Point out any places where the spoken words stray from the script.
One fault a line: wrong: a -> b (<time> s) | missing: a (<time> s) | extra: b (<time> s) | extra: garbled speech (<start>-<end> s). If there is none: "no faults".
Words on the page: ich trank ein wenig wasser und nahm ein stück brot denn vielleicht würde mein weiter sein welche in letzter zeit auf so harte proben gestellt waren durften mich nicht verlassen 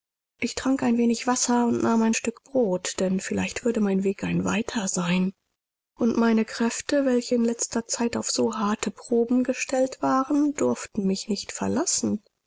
extra: weg ein (4.0 s)
extra: und meine kräfte (6.0 s)